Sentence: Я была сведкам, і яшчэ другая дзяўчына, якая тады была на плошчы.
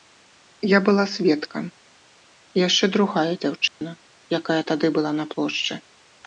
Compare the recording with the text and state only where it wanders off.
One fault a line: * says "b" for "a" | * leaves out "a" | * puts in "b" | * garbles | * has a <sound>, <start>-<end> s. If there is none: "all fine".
* has a dropout, 3.7-3.8 s